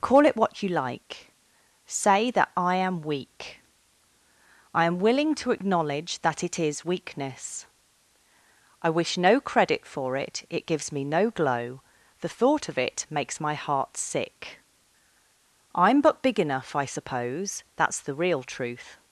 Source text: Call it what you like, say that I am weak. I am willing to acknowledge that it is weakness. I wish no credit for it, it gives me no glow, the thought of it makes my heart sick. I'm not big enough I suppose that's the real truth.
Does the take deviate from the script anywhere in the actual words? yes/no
yes